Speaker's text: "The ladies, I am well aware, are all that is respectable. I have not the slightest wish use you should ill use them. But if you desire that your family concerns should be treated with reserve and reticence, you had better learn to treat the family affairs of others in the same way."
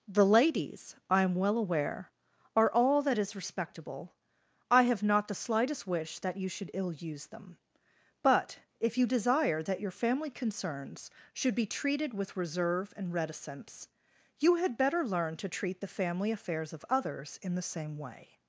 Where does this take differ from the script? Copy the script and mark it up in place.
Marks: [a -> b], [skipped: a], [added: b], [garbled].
"The ladies, I am well aware, are all that is respectable. I have not the slightest wish [use -> that] you should ill use them. But if you desire that your family concerns should be treated with reserve and reticence, you had better learn to treat the family affairs of others in the same way."